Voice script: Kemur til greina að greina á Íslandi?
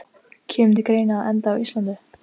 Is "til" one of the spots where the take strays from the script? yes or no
no